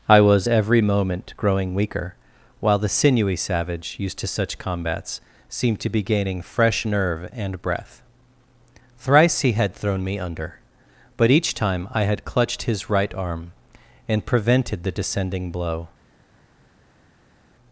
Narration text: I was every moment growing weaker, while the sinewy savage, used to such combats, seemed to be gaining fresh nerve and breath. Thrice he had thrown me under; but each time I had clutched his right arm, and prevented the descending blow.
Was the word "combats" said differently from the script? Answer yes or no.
no